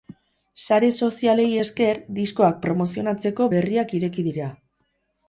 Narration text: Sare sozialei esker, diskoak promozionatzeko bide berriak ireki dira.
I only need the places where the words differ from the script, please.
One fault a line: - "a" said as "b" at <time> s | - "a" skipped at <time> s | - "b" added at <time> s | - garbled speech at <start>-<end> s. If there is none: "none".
- "bide" skipped at 3.5 s